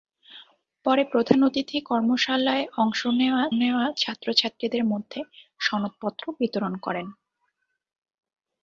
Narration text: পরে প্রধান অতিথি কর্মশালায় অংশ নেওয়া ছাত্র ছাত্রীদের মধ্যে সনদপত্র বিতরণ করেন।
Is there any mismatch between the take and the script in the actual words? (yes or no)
yes